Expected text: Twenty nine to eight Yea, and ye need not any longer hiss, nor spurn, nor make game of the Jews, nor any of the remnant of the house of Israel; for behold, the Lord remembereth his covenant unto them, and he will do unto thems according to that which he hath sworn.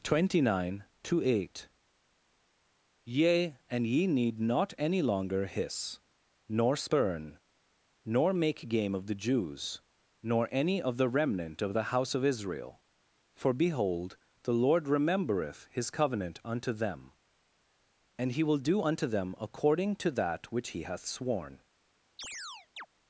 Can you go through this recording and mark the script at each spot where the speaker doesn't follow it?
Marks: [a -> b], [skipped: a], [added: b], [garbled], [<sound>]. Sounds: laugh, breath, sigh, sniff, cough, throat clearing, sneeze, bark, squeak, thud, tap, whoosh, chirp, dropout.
Twenty nine to eight Yea, and ye need not any longer hiss, nor spurn, nor make game of the Jews, nor any of the remnant of the house of Israel; for behold, the Lord remembereth his covenant unto them, and he will do unto [thems -> them] according to that which he hath sworn. [chirp]